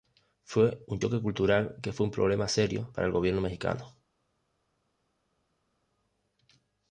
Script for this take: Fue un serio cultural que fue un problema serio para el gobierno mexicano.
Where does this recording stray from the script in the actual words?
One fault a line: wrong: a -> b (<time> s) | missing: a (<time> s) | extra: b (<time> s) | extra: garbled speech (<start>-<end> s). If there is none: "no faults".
wrong: serio -> choque (1.0 s)